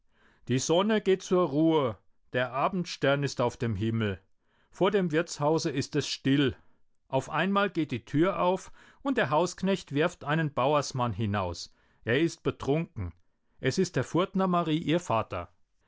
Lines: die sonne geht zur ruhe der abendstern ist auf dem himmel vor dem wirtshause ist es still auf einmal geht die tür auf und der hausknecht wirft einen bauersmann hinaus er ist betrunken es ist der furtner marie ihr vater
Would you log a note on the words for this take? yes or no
no